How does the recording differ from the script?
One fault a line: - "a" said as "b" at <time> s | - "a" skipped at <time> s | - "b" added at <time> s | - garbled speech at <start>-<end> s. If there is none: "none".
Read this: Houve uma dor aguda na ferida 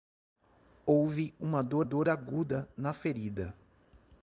- "dor" added at 1.8 s